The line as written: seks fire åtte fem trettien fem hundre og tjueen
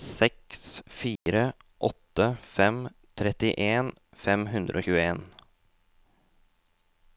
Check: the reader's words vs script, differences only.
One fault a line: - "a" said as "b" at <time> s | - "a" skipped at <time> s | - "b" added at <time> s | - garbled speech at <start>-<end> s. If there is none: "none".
none